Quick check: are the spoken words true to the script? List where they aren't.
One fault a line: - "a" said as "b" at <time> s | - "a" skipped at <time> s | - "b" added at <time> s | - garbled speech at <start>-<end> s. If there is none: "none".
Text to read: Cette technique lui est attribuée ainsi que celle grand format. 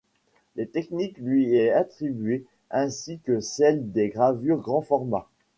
- "des gravures" added at 3.9 s